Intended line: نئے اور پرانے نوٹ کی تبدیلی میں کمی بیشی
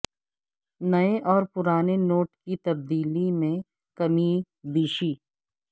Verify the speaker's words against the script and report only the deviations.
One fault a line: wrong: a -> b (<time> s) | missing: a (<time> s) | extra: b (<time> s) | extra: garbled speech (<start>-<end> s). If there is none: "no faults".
no faults